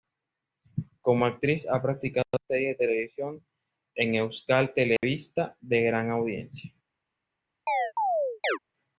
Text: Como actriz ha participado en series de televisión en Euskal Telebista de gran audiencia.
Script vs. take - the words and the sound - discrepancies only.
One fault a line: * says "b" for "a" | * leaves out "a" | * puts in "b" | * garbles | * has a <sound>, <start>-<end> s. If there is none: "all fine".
* has a dropout, 5.0-5.0 s
* has a chirp, 7.7-8.6 s